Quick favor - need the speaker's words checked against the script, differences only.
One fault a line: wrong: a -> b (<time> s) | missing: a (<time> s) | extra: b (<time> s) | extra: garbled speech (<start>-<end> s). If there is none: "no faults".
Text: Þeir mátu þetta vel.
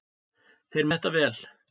missing: mátu (0.9 s)